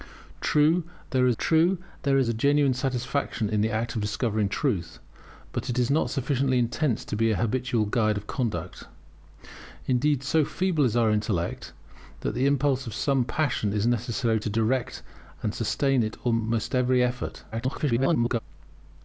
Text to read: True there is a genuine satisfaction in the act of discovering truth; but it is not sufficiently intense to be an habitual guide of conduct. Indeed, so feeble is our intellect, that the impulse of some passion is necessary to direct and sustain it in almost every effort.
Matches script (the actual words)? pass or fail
fail